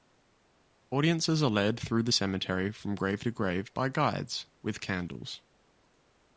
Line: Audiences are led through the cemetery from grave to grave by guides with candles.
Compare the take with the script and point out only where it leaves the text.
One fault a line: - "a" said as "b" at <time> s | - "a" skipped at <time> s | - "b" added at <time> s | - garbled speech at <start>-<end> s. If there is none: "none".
none